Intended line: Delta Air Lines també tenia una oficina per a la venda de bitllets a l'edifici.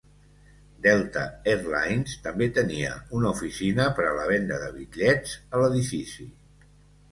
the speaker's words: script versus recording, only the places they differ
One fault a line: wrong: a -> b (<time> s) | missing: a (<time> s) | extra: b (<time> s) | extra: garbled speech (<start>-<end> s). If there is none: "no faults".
no faults